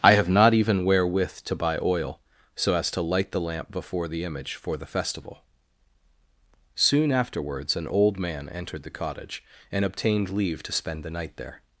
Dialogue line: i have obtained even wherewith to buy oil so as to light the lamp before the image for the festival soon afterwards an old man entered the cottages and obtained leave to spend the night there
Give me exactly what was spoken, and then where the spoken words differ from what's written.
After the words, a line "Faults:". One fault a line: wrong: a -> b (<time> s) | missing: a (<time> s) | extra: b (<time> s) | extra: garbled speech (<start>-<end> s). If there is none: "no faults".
i have not even wherewith to buy oil so as to light the lamp before the image for the festival soon afterwards an old man entered the cottage and obtained leave to spend the night there
Faults:
wrong: obtained -> not (0.3 s)
wrong: cottages -> cottage (8.9 s)